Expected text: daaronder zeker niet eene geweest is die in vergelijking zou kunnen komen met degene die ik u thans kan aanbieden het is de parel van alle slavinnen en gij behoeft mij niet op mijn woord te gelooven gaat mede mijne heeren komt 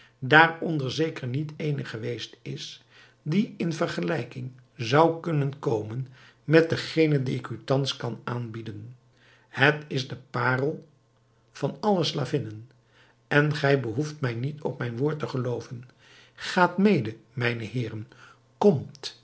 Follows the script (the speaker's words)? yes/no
yes